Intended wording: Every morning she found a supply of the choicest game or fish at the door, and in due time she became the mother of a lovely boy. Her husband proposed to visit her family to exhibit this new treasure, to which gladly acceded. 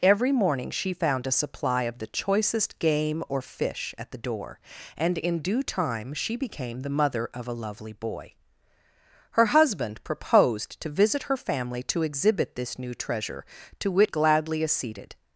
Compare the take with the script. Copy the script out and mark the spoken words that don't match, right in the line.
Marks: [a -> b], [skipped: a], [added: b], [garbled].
Every morning she found a supply of the choicest game or fish at the door, and in due time she became the mother of a lovely boy. Her husband proposed to visit her family to exhibit this new treasure, to which gladly acceded.